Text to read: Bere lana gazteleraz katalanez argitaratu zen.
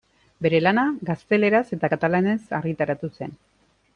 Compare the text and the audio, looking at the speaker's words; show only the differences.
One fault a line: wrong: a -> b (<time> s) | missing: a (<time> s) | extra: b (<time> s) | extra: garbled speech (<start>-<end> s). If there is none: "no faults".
extra: eta (1.8 s)